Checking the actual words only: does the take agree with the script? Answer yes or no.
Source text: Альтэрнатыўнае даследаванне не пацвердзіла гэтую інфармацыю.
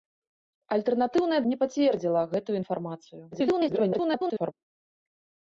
no